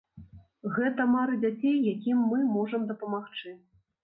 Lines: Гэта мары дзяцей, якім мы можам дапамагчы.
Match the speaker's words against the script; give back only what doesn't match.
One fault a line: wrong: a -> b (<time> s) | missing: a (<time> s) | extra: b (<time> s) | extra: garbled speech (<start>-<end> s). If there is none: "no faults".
no faults